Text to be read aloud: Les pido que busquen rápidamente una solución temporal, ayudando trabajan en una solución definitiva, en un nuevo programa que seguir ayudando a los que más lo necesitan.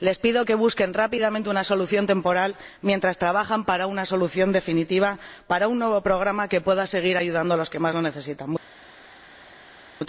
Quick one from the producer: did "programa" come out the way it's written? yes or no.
yes